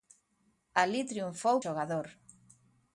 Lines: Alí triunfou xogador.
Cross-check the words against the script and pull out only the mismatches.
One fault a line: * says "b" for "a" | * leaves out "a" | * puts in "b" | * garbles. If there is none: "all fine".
all fine